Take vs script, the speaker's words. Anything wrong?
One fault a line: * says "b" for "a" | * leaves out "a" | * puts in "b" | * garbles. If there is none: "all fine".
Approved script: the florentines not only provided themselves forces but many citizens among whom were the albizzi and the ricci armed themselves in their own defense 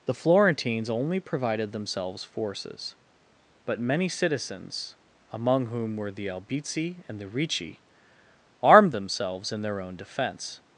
* leaves out "not"